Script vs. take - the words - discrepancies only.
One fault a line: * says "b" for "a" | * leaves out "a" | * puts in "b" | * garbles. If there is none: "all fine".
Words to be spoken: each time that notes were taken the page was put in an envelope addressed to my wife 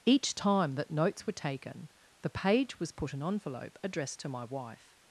* leaves out "in"